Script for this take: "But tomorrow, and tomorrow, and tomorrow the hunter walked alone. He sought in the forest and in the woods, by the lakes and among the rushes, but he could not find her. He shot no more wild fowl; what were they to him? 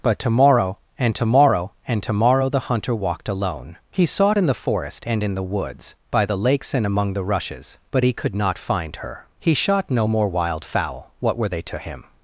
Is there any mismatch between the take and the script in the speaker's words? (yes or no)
no